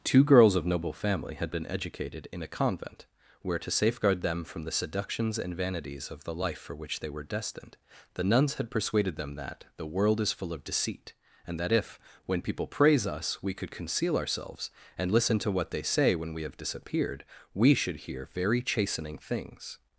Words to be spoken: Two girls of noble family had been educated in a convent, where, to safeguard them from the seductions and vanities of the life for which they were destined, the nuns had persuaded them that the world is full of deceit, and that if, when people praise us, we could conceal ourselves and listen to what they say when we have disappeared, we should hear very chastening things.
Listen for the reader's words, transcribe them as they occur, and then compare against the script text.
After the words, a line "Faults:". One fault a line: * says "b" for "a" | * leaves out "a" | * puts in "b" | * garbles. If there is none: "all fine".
Two girls of noble family had been educated in a convent, where, to safeguard them from the seductions and vanities of the life for which they were destined, the nuns had persuaded them that the world is full of deceit, and that if, when people praise us, we could conceal ourselves and listen to what they say when we have disappeared, we should hear very chastening things.
Faults:
all fine